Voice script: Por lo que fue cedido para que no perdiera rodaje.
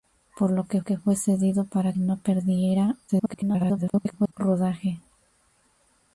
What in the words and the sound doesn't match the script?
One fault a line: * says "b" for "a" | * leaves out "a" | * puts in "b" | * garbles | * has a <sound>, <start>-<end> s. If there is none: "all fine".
* puts in "que"
* leaves out "que"
* garbles